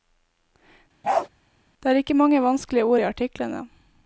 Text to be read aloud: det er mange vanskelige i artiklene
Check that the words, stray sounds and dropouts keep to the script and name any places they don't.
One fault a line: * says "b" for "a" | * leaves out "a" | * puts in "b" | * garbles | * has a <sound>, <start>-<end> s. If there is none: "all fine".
* has a bark, 1.0-1.3 s
* puts in "ikke"
* puts in "ord"